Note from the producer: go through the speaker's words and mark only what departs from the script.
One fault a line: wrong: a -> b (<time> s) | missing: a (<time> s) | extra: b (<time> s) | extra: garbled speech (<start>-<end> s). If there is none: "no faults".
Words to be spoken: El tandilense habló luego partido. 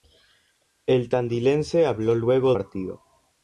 no faults